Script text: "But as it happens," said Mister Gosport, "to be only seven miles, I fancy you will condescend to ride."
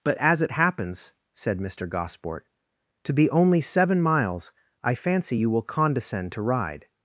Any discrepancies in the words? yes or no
no